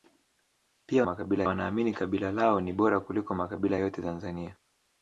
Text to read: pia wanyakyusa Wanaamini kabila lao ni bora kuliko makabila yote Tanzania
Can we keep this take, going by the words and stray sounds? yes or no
no